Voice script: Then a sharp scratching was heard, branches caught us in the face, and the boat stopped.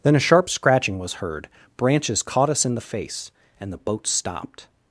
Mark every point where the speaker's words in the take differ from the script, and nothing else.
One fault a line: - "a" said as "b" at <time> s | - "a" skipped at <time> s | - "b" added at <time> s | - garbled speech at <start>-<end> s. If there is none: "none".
none